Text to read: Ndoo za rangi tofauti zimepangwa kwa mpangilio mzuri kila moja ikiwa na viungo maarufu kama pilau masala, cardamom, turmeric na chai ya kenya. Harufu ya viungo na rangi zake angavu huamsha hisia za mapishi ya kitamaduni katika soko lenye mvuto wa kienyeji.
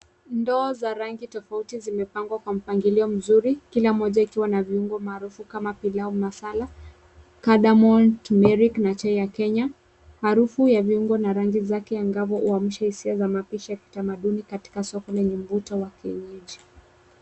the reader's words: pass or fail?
pass